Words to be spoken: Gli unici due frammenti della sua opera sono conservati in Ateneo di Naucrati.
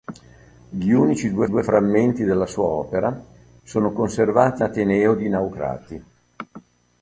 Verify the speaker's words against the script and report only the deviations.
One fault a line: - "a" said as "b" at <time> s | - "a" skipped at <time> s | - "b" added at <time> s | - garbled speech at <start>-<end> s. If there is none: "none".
- "due" added at 1.4 s
- "in" skipped at 4.6 s